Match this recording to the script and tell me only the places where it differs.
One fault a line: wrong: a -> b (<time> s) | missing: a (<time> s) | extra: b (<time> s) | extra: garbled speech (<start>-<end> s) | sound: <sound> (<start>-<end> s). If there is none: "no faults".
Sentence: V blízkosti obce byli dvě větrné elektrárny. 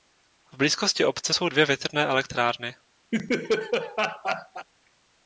wrong: byli -> jsou (1.3 s)
sound: laugh (3.1-4.7 s)